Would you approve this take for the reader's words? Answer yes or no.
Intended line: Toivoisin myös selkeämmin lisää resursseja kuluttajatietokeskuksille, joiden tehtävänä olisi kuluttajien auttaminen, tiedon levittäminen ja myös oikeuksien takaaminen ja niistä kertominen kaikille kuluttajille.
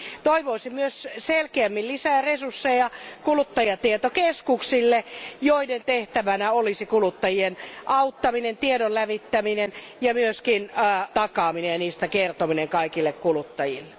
no